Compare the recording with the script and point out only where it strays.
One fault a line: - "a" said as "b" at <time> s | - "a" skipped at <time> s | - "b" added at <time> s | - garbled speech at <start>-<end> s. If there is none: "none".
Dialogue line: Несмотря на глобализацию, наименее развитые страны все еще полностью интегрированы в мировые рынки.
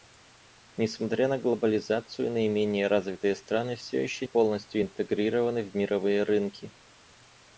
none